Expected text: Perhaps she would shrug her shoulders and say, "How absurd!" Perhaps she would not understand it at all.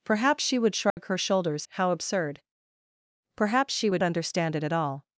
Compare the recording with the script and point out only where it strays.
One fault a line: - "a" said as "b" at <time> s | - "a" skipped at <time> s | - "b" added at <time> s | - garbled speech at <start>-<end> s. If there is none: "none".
- "and say" skipped at 1.7 s
- "not" skipped at 4.0 s